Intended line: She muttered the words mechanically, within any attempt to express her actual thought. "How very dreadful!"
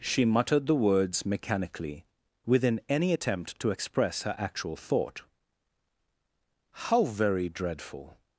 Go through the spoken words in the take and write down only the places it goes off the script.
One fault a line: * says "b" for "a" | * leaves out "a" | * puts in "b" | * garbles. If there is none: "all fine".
all fine